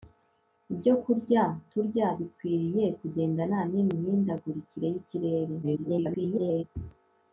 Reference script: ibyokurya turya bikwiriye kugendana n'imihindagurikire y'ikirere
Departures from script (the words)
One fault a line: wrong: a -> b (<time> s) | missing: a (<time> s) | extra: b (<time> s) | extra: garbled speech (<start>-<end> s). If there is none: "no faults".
extra: garbled speech (5.6-6.6 s)